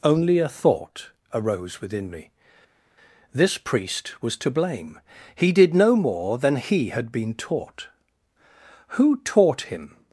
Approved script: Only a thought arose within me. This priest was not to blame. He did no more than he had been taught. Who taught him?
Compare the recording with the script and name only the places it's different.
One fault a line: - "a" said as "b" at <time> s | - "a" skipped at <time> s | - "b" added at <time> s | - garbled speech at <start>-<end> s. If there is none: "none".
- "not" skipped at 4.4 s